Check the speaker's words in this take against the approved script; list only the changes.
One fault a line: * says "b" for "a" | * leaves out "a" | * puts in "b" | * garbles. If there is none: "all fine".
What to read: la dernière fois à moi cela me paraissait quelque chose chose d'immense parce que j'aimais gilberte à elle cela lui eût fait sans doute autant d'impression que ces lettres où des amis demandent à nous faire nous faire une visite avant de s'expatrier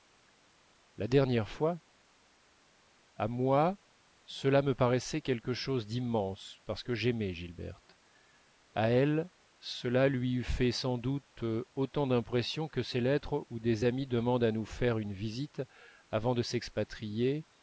* leaves out "chose"
* leaves out "nous faire"